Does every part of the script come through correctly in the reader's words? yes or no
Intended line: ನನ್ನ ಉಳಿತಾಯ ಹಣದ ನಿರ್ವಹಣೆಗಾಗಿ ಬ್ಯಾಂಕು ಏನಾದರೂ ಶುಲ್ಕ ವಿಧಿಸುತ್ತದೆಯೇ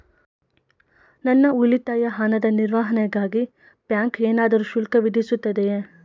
yes